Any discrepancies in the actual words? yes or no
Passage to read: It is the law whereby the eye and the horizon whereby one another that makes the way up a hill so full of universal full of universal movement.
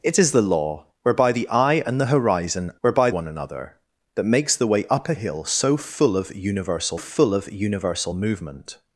no